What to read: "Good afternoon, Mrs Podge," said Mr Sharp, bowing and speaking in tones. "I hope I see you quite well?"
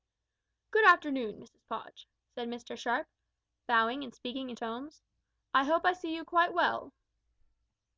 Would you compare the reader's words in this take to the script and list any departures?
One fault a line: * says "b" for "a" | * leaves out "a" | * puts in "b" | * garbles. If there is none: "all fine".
all fine